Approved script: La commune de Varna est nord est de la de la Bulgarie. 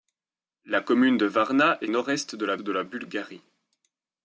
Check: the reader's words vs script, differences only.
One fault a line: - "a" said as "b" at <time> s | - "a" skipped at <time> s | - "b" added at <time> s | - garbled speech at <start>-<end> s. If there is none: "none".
none